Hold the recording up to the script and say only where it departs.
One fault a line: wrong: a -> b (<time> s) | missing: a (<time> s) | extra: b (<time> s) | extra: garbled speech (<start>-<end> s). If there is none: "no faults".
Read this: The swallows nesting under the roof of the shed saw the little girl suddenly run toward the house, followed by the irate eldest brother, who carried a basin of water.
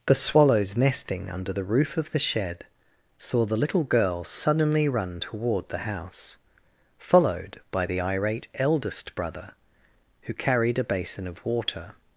no faults